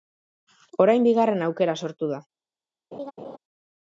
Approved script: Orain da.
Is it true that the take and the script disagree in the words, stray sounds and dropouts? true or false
true